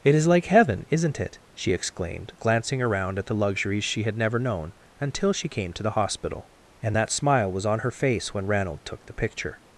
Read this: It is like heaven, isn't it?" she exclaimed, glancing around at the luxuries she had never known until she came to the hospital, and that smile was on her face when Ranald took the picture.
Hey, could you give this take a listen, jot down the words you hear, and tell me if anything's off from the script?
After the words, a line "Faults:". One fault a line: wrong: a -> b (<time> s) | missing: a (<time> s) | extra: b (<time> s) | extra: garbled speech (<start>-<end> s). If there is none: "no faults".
It is like heaven, isn't it?" she exclaimed, glancing around at the luxuries she had never known until she came to the hospital, and that smile was on her face when Ranald took the picture.
Faults:
no faults